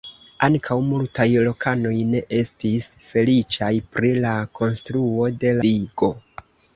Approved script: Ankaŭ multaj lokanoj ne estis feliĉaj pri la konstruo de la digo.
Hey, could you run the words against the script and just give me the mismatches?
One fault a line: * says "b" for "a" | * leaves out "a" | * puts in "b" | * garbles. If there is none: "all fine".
* leaves out "la"